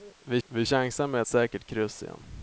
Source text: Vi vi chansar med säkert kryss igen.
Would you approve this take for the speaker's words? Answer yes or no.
yes